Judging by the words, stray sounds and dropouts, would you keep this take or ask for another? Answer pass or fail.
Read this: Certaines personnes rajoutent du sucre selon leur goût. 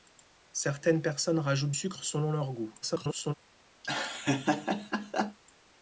fail